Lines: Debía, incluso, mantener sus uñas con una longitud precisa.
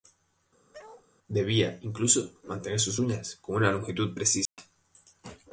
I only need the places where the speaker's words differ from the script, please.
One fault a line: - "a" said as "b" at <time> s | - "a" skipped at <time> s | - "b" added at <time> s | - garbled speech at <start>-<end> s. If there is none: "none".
none